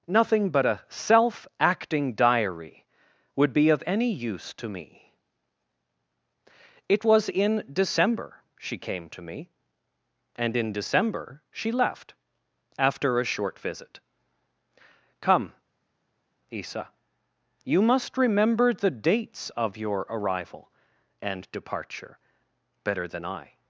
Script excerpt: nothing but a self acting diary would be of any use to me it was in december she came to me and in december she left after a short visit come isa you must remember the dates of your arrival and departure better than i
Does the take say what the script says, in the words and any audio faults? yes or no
yes